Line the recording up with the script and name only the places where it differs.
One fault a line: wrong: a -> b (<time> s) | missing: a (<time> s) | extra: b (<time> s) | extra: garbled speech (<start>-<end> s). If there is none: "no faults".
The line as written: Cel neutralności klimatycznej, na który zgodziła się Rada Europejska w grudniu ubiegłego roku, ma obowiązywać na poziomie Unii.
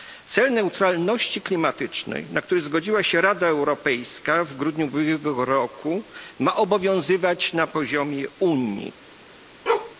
no faults